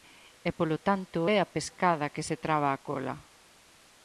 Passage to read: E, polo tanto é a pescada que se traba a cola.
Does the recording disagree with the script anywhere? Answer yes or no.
no